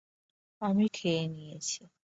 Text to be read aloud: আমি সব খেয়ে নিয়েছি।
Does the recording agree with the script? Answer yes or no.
no